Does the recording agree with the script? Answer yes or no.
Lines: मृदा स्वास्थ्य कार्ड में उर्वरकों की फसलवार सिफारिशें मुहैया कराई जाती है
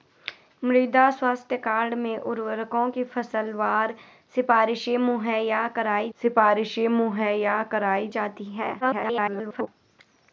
no